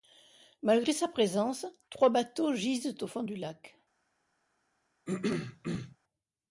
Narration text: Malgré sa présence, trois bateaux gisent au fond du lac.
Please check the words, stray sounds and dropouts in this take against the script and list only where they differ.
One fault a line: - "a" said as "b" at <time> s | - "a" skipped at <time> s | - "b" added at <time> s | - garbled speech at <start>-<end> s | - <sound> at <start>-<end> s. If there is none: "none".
- throat clearing at 5.1-6.0 s